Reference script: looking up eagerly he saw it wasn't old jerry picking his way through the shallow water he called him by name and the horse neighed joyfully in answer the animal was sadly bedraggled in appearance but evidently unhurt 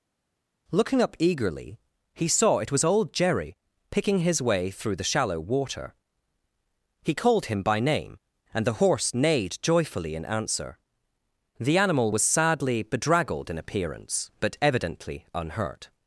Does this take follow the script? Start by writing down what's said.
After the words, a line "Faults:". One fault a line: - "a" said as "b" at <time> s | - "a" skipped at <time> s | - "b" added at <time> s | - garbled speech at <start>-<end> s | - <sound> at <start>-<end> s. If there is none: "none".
looking up eagerly he saw it was old jerry picking his way through the shallow water he called him by name and the horse neighed joyfully in answer the animal was sadly bedraggled in appearance but evidently unhurt
Faults:
- "wasn't" said as "was" at 2.7 s